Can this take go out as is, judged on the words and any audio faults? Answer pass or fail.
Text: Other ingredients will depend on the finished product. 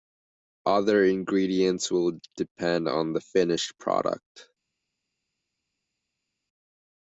pass